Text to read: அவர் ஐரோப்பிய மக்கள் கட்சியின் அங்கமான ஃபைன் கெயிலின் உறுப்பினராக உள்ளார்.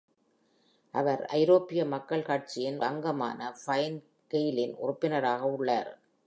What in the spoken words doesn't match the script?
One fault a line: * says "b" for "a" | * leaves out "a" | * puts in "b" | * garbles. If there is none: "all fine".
all fine